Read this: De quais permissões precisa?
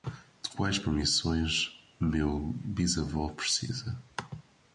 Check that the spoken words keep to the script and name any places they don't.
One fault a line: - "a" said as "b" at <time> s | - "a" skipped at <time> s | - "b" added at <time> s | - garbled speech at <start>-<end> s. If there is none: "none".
- "meu bisavô" added at 2.0 s